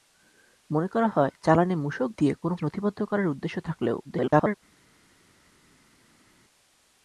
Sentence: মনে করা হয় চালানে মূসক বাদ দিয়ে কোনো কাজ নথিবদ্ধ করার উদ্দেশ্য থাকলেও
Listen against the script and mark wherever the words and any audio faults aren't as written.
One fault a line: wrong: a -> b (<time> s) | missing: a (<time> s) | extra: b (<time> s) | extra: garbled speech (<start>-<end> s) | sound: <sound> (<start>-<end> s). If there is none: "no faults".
missing: বাদ (2.1 s)
missing: কাজ (2.5 s)
extra: garbled speech (4.0-4.5 s)